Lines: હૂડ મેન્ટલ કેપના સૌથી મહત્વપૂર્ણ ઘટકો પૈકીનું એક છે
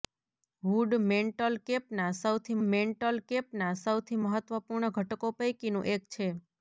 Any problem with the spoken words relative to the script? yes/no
yes